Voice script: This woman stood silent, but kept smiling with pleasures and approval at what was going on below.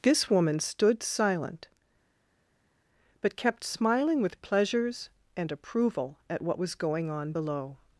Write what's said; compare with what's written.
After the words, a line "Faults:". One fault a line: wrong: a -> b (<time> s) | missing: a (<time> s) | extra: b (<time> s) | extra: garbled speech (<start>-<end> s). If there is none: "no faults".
This woman stood silent, but kept smiling with pleasures and approval at what was going on below.
Faults:
no faults